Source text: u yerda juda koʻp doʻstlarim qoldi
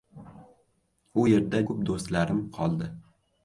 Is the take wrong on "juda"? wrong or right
wrong